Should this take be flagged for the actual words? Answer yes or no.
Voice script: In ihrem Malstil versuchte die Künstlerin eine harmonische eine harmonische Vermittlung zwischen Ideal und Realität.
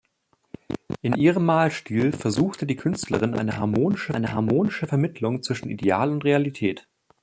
no